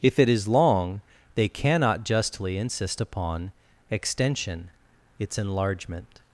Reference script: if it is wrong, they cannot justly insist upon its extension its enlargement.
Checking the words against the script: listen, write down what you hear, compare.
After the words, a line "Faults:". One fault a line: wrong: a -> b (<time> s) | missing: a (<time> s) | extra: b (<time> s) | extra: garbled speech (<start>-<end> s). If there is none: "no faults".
if it is long, they cannot justly insist upon extension its enlargement.
Faults:
wrong: wrong -> long (0.5 s)
missing: its (3.5 s)